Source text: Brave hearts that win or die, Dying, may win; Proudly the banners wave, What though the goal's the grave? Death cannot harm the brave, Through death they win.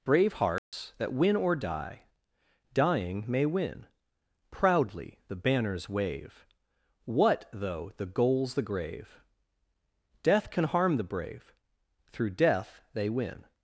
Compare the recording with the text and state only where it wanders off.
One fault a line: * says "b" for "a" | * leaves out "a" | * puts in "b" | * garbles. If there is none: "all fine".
* says "can" for "cannot"